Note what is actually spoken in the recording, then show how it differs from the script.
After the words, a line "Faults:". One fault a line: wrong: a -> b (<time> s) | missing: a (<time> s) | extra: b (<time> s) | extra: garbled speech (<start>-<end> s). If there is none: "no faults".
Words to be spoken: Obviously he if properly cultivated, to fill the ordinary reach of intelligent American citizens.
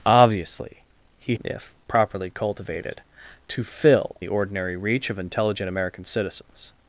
Obviously he if properly cultivated, to fill the ordinary reach of intelligent American citizens.
Faults:
no faults